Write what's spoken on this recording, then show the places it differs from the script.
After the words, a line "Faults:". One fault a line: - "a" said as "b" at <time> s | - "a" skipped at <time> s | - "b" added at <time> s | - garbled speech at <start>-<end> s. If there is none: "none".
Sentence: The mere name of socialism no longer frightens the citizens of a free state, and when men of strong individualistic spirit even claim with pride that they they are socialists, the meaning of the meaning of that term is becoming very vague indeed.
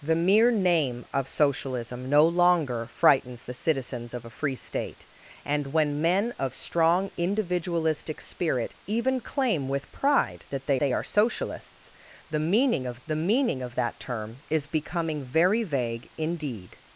The mere name of socialism no longer frightens the citizens of a free state, and when men of strong individualistic spirit even claim with pride that they they are socialists, the meaning of the meaning of that term is becoming very vague indeed.
Faults:
none